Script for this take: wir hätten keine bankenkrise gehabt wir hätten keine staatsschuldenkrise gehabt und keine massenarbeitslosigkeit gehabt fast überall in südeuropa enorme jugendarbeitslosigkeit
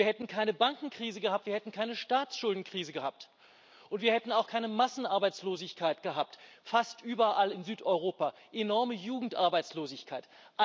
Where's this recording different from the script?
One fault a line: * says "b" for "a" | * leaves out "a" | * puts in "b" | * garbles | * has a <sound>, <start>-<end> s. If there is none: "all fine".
* puts in "wir hätten auch"